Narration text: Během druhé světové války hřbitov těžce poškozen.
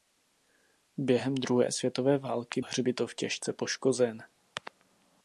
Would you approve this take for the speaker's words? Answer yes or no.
yes